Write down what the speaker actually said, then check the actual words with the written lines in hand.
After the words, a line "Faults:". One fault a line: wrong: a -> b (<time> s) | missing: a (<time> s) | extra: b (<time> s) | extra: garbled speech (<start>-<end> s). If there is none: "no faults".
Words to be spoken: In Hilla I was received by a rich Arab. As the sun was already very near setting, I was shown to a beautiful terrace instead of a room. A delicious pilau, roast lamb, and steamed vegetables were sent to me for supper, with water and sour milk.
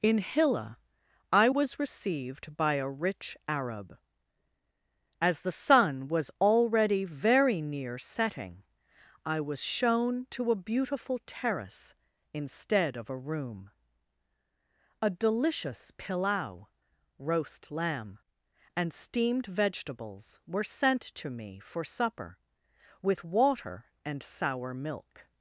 In Hilla I was received by a rich Arab. As the sun was already very near setting, I was shown to a beautiful terrace instead of a room. A delicious pilau, roast lamb, and steamed vegetables were sent to me for supper, with water and sour milk.
Faults:
no faults